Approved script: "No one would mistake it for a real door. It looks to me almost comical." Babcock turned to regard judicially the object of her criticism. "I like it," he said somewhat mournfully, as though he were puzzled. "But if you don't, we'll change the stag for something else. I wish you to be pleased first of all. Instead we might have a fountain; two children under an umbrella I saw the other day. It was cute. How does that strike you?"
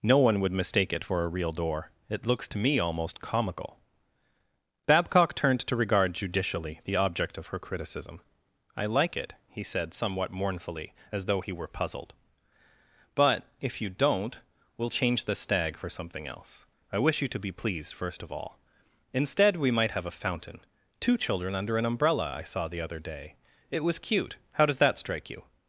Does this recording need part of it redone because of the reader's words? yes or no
no